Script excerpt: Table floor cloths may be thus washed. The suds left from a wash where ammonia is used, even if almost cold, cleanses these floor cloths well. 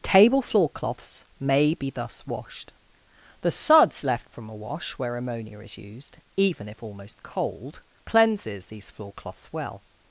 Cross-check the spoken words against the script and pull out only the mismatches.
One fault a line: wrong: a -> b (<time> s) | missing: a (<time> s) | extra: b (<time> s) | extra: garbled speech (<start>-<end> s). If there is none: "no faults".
no faults